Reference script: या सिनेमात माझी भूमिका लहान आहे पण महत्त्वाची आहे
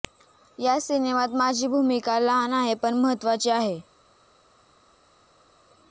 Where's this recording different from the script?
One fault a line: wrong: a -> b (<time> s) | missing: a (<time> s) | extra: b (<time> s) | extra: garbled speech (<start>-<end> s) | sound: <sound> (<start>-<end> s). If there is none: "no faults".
no faults